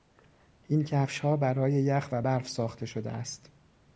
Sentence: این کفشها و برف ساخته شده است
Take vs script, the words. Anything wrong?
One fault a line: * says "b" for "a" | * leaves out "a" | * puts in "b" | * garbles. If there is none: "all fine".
* puts in "برای یخ"